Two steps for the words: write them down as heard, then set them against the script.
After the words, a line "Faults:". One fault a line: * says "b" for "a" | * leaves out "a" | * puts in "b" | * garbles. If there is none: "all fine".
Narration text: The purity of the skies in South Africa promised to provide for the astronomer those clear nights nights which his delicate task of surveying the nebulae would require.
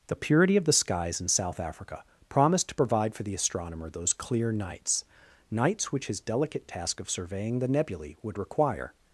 The purity of the skies in South Africa promised to provide for the astronomer those clear nights nights which his delicate task of surveying the nebulae would require.
Faults:
all fine